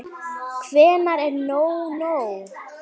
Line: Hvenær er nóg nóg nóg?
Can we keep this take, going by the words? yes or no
no